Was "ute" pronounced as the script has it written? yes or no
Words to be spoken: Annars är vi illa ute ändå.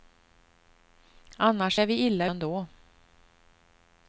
no